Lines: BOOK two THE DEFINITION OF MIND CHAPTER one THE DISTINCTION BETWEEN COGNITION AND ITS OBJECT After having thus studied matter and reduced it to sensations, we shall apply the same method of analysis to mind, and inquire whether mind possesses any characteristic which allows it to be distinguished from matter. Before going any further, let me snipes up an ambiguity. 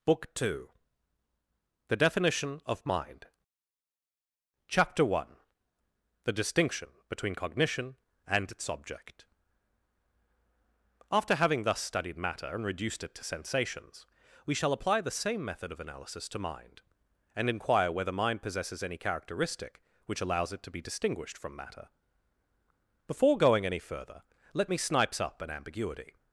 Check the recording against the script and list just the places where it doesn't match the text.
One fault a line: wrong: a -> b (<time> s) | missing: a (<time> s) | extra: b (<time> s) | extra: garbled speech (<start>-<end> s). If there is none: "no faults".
no faults